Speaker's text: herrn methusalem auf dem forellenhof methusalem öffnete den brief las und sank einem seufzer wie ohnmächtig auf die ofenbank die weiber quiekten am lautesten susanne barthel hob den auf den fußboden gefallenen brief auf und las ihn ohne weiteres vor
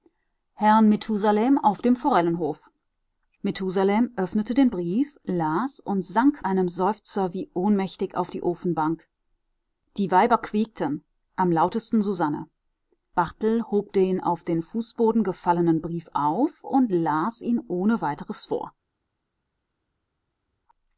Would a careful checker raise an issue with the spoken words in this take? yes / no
no